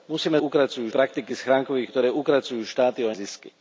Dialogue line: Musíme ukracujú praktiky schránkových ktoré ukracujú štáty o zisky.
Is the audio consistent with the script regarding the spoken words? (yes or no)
yes